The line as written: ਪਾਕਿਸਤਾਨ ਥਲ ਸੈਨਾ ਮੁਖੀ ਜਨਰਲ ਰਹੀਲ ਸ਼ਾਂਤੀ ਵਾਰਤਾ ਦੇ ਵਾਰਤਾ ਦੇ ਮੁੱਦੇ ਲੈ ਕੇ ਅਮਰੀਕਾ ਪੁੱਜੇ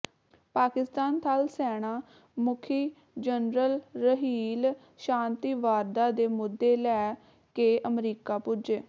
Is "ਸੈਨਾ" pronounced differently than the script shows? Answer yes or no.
no